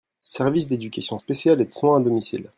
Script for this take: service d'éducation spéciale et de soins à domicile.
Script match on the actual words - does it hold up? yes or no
yes